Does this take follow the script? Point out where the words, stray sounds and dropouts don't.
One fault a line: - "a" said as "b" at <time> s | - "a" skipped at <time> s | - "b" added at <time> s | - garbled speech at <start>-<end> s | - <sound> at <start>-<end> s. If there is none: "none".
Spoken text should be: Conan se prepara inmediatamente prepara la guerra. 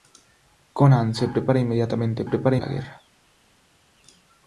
none